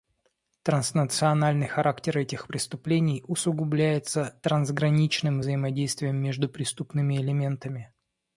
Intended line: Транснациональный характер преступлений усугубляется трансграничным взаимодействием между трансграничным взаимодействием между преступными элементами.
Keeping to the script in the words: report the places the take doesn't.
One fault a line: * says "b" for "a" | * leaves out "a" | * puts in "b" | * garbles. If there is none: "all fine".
* puts in "этих"
* leaves out "трансграничным взаимодействием между"